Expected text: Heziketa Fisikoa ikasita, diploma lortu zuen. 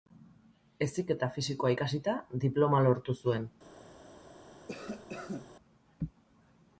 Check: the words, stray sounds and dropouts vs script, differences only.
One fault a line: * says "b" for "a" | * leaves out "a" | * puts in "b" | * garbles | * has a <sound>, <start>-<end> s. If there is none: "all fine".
* has a cough, 4.7-5.5 s